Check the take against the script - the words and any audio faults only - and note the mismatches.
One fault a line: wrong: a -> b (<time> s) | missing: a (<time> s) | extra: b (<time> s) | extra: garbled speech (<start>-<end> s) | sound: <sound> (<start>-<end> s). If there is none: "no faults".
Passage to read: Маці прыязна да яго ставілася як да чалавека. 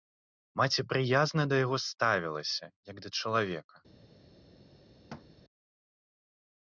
sound: thud (5.1-5.3 s)